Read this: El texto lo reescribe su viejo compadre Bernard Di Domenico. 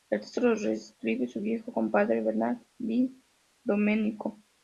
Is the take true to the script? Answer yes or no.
yes